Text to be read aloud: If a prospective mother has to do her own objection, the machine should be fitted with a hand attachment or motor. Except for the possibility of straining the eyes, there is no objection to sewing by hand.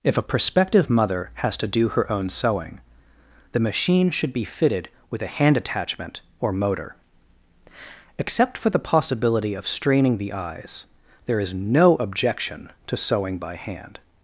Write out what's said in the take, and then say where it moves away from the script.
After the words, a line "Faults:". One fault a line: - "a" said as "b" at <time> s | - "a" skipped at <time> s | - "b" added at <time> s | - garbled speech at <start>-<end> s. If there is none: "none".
If a prospective mother has to do her own sewing, the machine should be fitted with a hand attachment or motor. Except for the possibility of straining the eyes, there is no objection to sewing by hand.
Faults:
- "objection" said as "sewing" at 2.3 s